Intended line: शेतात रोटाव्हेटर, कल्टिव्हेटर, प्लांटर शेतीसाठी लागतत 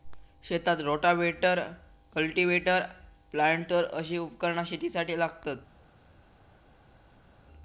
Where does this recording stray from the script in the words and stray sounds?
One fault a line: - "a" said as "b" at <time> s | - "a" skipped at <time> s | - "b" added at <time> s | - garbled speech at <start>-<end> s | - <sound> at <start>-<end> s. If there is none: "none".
- "अशी उपकरणा" added at 3.9 s